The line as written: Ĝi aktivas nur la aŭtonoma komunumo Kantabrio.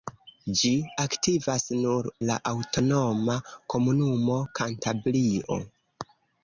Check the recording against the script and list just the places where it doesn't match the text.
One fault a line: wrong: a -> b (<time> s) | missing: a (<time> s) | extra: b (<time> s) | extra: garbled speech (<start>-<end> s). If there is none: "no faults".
no faults